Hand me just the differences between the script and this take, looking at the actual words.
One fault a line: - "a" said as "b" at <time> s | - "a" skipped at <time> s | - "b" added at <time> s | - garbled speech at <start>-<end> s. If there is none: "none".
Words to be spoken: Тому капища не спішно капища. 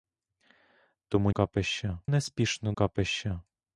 none